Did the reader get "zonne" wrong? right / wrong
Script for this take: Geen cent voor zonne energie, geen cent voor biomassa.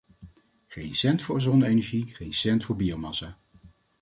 right